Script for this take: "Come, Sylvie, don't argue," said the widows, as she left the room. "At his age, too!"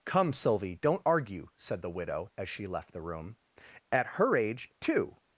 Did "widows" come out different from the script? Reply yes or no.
yes